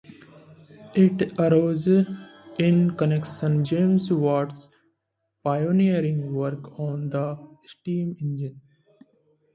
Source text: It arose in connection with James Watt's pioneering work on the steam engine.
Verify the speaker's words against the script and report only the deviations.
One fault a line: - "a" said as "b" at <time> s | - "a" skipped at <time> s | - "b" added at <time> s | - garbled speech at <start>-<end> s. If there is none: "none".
- "with" skipped at 3.6 s